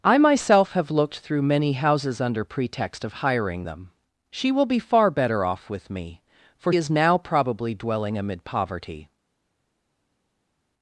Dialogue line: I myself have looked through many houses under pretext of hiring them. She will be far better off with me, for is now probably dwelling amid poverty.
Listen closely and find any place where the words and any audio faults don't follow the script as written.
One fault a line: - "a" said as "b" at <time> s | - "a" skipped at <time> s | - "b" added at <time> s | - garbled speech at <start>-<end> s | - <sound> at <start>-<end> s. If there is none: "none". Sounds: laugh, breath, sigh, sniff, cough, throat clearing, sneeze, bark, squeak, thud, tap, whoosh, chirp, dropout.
none